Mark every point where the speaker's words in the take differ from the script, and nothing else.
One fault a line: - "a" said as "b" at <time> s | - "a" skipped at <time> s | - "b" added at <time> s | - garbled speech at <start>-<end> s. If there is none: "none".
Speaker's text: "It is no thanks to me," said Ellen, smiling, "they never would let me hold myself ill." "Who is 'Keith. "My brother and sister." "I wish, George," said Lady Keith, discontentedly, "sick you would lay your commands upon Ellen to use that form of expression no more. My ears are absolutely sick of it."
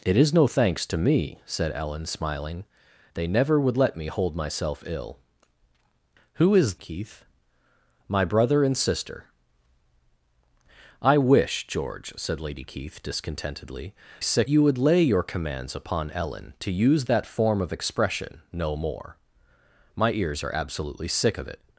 none